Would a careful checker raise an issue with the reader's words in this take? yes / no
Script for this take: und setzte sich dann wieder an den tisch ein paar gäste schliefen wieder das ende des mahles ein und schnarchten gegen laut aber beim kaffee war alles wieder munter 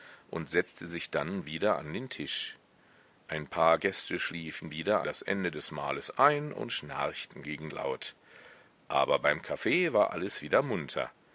no